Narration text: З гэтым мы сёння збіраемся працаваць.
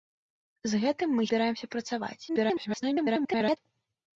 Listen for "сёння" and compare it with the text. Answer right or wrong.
wrong